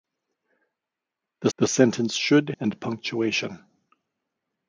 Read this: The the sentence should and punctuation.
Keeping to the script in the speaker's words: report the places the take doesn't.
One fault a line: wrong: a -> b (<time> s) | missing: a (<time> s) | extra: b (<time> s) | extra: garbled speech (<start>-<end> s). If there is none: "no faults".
no faults